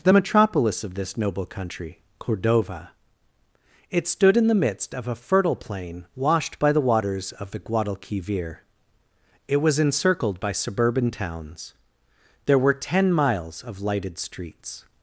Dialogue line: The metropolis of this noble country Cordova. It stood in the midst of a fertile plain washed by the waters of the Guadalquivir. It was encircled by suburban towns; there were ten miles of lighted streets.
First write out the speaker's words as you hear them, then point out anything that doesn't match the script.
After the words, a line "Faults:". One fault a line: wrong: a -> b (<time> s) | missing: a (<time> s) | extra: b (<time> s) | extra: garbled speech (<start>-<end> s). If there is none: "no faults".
The metropolis of this noble country Cordova. It stood in the midst of a fertile plain washed by the waters of the Guadalquivir. It was encircled by suburban towns; there were ten miles of lighted streets.
Faults:
no faults